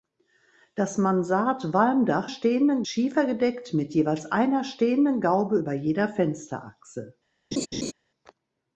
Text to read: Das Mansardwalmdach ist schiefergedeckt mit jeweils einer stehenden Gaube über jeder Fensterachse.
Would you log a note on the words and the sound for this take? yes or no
yes